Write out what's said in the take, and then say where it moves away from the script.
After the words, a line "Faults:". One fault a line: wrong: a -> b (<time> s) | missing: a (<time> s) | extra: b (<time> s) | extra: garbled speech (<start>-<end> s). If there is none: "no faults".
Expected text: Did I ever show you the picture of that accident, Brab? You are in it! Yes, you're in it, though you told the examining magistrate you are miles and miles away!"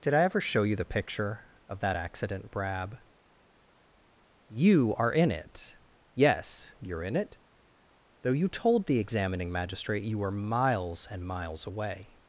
Did I ever show you the picture of that accident, Brab? You are in it! Yes, you're in it, though you told the examining magistrate you were miles and miles away!"
Faults:
wrong: are -> were (10.2 s)